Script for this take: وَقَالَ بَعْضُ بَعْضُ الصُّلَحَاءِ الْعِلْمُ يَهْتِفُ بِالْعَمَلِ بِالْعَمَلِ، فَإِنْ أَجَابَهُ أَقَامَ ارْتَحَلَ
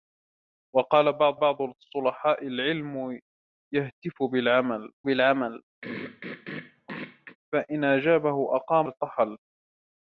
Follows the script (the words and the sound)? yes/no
no